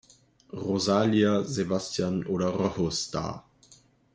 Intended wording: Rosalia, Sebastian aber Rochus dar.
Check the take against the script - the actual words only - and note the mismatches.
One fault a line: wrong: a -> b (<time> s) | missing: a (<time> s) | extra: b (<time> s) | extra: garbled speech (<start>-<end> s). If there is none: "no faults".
wrong: aber -> oder (2.2 s)